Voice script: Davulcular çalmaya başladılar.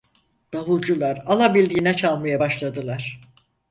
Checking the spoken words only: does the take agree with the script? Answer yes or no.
no